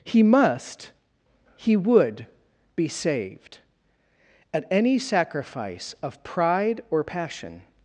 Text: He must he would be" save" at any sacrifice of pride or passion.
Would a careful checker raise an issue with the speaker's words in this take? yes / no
yes